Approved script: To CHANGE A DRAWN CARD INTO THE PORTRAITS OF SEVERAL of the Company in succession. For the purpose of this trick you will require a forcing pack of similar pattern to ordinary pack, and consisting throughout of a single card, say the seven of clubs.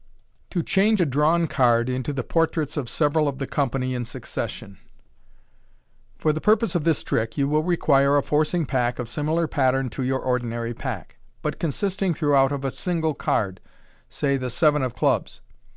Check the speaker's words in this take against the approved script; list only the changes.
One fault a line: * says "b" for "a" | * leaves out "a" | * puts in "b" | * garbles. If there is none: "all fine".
* puts in "your"
* says "but" for "and"